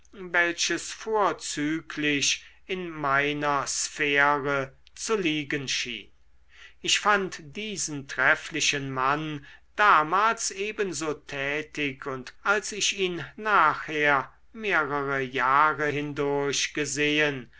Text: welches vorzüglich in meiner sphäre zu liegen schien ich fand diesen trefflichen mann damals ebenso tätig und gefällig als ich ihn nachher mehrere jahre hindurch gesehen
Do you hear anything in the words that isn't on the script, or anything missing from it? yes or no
yes